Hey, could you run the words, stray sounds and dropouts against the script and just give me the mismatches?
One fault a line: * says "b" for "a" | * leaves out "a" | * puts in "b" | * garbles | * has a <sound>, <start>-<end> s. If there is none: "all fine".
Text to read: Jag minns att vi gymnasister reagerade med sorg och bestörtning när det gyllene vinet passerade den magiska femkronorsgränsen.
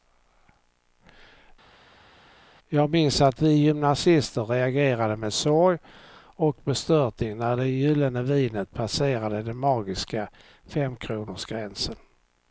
all fine